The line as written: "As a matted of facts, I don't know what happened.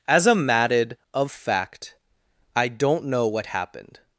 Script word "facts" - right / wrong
wrong